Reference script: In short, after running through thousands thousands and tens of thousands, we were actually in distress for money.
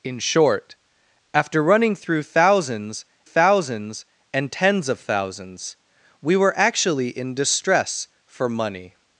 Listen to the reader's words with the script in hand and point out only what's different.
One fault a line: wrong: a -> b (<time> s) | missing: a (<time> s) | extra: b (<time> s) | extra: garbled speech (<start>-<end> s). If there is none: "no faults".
no faults